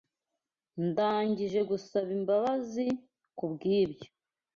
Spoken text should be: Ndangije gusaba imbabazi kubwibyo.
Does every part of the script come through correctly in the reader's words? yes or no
yes